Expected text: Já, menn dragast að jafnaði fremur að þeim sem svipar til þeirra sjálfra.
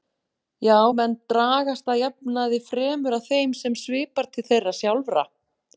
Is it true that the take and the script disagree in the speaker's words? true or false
false